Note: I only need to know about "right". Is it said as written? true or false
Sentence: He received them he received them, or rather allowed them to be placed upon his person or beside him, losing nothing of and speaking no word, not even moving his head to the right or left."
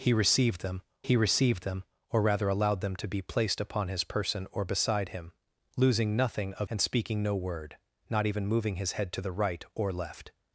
true